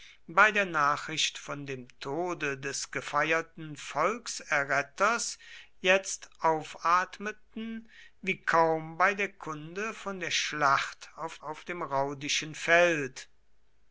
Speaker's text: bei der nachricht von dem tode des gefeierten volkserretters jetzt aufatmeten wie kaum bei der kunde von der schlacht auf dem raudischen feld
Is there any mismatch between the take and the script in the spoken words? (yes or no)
yes